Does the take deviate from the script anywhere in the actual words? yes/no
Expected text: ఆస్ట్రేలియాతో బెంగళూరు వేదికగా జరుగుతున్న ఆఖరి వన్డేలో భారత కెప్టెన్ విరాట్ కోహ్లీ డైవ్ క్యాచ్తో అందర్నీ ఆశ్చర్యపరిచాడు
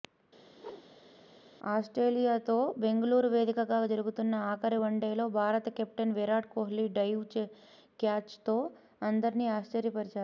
no